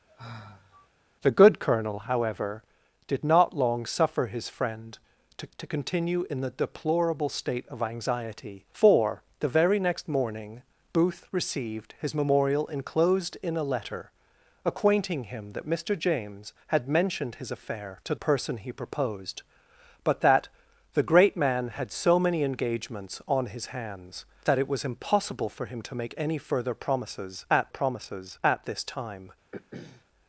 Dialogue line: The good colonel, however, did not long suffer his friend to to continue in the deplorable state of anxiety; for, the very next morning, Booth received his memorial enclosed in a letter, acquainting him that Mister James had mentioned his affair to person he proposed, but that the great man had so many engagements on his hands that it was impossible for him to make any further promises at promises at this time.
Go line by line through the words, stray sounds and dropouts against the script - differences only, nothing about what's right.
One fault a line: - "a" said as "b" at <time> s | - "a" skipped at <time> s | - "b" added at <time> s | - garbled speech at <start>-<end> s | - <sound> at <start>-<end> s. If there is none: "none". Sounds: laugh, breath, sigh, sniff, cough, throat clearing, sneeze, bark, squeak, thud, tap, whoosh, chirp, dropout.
- sigh at 0.1-0.9 s
- throat clearing at 29.5-30.0 s